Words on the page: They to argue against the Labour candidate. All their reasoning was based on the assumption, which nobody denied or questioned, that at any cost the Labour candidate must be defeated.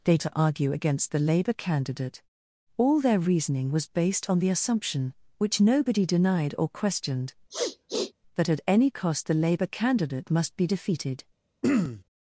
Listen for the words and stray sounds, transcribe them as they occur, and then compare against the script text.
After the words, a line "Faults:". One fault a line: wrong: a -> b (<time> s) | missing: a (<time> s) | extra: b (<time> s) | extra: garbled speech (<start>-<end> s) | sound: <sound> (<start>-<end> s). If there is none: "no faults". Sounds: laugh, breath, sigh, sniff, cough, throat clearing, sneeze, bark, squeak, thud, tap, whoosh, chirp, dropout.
They to argue against the Labour candidate. All their reasoning was based on the assumption, which nobody denied or questioned, that at any cost the Labour candidate must be defeated.
Faults:
sound: sniff (7.5-8.1 s)
sound: throat clearing (11.6-12.0 s)